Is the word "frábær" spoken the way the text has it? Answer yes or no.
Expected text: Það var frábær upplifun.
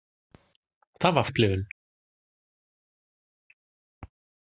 no